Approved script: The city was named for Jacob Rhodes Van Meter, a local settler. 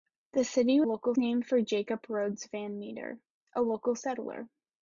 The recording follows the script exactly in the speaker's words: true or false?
false